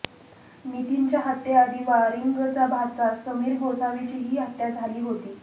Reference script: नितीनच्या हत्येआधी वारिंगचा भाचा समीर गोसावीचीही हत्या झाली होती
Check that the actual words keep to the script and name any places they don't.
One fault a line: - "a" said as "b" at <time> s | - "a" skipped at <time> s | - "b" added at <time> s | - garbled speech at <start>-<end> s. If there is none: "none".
none